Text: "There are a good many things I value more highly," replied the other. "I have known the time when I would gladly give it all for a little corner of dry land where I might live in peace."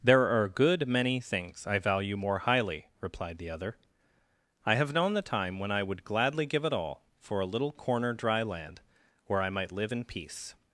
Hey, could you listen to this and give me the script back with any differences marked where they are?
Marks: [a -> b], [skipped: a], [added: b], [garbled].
"There are a good many things I value more highly," replied the other. "I have known the time when I would gladly give it all for a little corner [skipped: of] dry land where I might live in peace."